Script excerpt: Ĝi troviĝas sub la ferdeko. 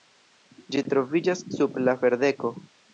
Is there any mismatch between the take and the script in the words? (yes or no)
no